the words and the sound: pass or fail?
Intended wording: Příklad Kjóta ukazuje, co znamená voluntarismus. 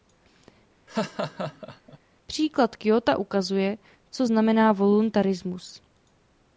fail